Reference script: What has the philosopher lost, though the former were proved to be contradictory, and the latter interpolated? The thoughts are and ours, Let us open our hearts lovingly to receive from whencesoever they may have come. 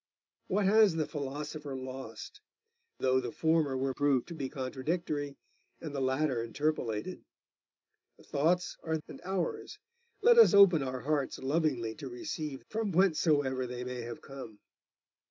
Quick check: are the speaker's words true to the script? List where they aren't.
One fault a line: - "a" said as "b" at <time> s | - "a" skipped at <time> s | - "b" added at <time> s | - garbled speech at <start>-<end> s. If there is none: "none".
none